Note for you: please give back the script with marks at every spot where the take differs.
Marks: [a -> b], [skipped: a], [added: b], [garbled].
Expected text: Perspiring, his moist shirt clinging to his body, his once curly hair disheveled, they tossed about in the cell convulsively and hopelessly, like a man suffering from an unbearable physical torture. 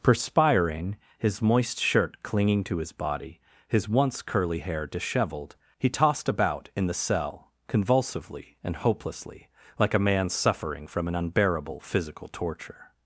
Perspiring, his moist shirt clinging to his body, his once curly hair disheveled, [they -> he] tossed about in the cell convulsively and hopelessly, like a man suffering from an unbearable physical torture.